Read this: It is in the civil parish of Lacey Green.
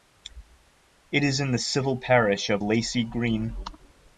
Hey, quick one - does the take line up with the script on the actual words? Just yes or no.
yes